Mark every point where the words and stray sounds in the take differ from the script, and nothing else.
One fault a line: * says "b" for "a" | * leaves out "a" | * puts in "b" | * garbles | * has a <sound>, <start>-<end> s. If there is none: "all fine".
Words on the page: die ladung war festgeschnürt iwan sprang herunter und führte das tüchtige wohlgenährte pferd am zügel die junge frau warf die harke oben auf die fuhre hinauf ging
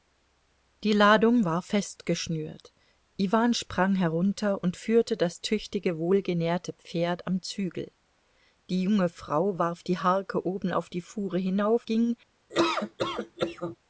* has a laugh, 12.5-13.8 s